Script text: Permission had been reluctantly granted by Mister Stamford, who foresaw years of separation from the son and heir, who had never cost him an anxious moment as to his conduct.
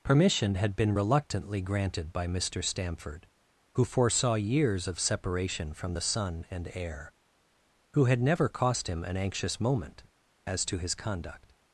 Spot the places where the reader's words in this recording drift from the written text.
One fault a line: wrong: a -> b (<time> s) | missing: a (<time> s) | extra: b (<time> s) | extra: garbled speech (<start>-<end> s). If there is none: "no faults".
no faults